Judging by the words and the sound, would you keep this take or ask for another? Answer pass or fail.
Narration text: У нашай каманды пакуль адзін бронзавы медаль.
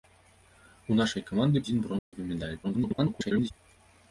fail